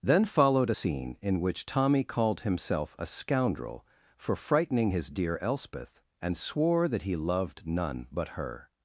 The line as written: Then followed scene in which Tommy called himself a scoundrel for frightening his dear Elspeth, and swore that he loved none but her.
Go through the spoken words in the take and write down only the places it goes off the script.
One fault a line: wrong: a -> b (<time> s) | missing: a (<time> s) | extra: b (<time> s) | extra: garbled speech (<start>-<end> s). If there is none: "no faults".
no faults